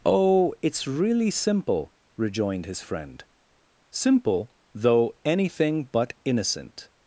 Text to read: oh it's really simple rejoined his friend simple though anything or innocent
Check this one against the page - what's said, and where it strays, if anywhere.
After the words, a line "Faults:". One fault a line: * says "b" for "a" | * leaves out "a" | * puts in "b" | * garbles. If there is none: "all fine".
oh it's really simple rejoined his friend simple though anything but innocent
Faults:
* says "but" for "or"